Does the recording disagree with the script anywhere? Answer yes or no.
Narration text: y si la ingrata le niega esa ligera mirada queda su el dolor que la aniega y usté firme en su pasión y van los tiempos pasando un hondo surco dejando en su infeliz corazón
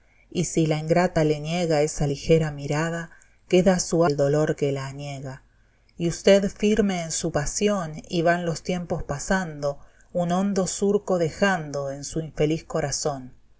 no